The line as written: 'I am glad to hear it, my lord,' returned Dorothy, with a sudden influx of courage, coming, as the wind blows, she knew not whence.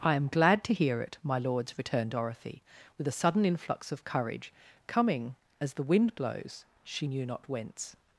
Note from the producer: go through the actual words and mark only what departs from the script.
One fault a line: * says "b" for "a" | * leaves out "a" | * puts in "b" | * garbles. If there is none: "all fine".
* says "lords" for "lord"